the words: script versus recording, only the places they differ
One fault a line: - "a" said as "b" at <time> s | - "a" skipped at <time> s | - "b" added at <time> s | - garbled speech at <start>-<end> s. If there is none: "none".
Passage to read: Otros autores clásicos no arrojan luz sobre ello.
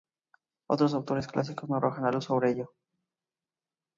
none